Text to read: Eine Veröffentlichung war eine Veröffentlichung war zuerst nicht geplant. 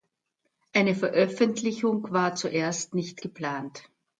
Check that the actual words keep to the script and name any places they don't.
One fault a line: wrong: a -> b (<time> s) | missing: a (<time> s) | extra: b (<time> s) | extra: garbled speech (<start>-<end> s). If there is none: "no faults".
missing: eine Veröffentlichung war (2.4 s)